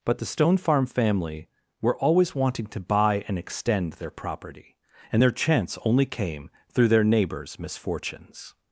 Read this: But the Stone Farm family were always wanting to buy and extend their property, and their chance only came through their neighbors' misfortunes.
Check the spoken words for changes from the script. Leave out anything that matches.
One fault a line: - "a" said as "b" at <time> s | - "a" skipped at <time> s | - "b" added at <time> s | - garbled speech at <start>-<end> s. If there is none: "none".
none